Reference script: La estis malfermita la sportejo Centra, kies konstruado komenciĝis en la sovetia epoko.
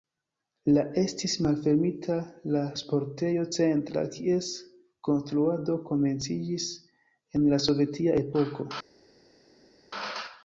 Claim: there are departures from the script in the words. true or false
false